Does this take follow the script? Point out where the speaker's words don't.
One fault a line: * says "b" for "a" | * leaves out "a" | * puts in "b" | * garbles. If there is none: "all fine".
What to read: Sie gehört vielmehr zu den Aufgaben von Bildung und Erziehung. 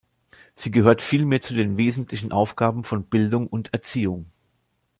* puts in "wesentlichen"